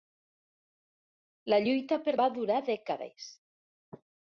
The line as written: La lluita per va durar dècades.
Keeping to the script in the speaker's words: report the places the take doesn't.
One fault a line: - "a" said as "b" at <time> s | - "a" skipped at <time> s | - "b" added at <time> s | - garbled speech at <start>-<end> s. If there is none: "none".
none